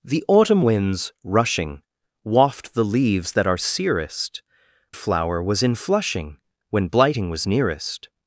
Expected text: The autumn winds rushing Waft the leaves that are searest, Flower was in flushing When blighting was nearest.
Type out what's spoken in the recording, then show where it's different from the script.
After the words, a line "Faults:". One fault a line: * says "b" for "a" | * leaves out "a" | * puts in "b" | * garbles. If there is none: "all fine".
The autumn winds rushing Waft the leaves that are searest, Flower was in flushing When blighting was nearest.
Faults:
all fine